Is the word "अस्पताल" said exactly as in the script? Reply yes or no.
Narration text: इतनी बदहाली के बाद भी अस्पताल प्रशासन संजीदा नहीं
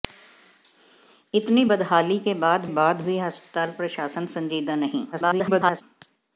yes